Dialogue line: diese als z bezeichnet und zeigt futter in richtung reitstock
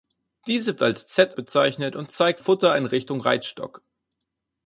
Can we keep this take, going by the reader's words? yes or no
yes